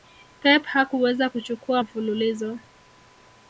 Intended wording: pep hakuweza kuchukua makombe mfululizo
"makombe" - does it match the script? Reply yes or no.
no